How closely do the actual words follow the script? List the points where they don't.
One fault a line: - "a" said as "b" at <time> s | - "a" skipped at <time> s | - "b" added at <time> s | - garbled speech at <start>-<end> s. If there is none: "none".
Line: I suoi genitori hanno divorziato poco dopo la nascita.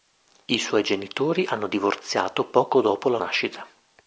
none